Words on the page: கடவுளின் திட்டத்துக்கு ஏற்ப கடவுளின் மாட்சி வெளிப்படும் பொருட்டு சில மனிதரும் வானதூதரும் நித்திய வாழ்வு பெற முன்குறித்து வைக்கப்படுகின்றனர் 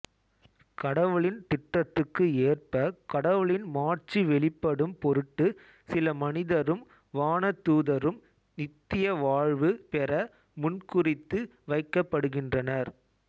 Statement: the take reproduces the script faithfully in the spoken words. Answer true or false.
true